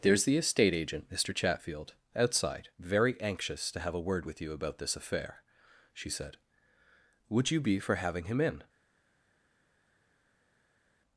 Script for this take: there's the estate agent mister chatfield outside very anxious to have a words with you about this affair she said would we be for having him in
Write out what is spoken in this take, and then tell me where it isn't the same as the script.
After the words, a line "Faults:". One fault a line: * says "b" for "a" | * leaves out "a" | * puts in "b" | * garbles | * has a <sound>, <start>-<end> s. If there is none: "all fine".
there's the estate agent mister chatfield outside very anxious to have a word with you about this affair she said would you be for having him in
Faults:
* says "word" for "words"
* says "you" for "we"